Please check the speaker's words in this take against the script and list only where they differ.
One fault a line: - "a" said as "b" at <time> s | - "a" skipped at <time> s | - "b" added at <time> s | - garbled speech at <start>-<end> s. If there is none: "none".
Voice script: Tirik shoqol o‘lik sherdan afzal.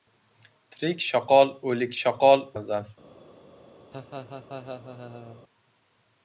- "sherdan" said as "shoqol" at 2.0 s